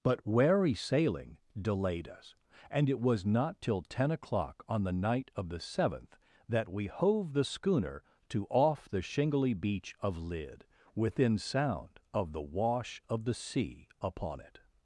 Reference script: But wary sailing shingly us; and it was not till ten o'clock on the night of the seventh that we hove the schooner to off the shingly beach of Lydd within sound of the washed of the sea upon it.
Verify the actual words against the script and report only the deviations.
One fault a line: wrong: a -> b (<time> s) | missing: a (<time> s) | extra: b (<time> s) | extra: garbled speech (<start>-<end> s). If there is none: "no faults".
wrong: shingly -> delayed (1.6 s)
wrong: washed -> wash (12.4 s)